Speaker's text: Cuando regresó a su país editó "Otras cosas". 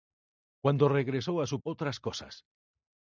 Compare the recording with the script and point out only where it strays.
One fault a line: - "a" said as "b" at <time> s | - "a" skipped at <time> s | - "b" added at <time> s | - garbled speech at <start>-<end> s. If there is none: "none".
- "país editó" skipped at 1.6 s